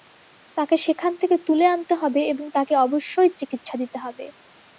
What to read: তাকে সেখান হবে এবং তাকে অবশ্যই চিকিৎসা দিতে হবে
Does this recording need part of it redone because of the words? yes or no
yes